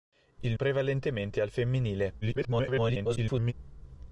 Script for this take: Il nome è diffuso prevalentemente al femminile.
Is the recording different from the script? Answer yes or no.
yes